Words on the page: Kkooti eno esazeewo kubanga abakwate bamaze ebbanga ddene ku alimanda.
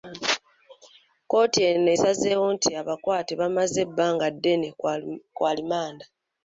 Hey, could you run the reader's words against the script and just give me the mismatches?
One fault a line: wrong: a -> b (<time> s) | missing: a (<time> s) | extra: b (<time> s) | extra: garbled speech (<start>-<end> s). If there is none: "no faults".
wrong: kubanga -> nti (2.5 s)